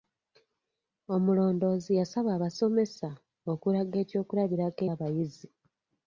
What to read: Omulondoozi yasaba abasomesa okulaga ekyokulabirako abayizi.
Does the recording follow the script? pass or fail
pass